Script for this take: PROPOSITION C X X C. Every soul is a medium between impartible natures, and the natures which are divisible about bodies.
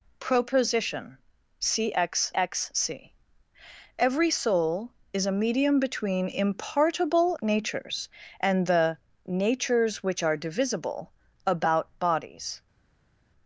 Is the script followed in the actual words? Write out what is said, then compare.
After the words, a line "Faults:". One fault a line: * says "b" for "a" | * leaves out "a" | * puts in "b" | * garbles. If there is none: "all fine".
PROPOSITION C X X C. Every soul is a medium between impartible natures, and the natures which are divisible about bodies.
Faults:
all fine